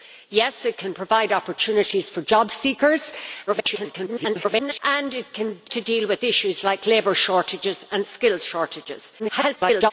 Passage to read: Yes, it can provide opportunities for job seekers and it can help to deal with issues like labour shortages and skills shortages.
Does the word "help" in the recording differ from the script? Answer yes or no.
yes